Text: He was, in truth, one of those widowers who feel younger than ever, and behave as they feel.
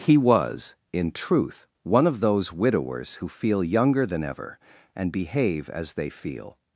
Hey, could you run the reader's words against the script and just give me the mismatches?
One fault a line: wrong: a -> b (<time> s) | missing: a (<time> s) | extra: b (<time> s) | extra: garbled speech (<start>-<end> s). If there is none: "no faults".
no faults